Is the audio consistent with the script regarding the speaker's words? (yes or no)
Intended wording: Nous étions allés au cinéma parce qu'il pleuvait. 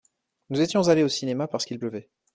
yes